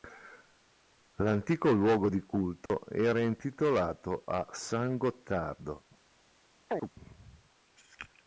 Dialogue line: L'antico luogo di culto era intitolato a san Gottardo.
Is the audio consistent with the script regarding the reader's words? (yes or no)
yes